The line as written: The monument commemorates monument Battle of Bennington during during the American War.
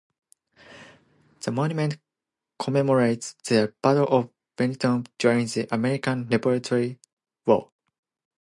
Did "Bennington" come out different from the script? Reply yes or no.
no